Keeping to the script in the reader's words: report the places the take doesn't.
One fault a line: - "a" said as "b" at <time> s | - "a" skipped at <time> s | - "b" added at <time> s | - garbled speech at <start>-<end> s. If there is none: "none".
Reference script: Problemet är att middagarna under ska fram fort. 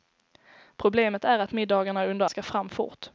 none